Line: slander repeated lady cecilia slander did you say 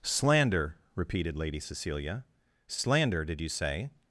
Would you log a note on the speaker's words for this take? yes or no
no